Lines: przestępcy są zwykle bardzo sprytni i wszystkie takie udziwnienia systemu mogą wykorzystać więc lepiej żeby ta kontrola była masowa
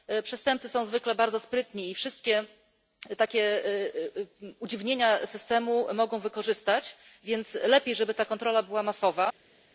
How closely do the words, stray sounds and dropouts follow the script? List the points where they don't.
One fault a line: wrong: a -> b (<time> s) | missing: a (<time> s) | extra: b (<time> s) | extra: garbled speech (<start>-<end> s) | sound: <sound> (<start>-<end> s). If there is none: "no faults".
no faults